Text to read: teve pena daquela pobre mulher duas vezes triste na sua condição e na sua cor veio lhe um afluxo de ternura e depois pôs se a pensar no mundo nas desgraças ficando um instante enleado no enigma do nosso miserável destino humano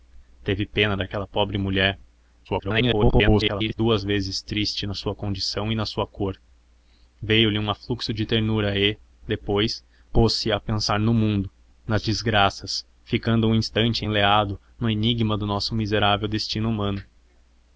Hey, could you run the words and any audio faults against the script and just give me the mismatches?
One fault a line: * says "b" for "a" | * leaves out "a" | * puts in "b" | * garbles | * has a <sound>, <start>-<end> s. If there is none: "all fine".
* garbles